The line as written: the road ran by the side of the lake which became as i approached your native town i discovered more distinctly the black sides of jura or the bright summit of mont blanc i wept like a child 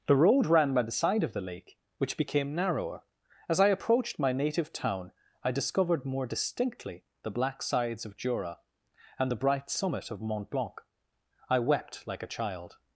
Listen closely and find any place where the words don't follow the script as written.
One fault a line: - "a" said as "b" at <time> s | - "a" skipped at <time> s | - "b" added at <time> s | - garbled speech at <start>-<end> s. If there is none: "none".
- "narrower" added at 2.5 s
- "your" said as "my" at 4.2 s
- "or" said as "and" at 9.2 s